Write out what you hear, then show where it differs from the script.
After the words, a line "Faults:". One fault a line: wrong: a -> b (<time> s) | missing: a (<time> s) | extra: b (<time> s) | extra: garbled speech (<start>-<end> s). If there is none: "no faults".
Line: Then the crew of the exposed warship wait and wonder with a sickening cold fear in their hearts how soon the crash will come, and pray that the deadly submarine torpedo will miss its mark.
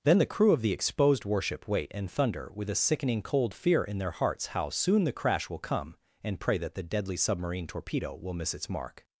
Then the crew of the exposed warship wait and thunder with a sickening cold fear in their hearts how soon the crash will come, and pray that the deadly submarine torpedo will miss its mark.
Faults:
wrong: wonder -> thunder (2.1 s)